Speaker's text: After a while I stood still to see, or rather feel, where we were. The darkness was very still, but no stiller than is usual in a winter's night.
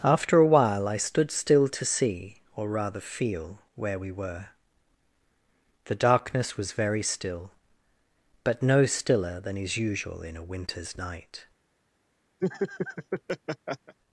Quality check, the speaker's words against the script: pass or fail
pass